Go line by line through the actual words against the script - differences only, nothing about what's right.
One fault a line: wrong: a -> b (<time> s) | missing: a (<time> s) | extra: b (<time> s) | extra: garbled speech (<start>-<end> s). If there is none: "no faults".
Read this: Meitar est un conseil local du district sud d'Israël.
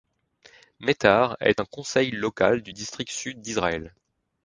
no faults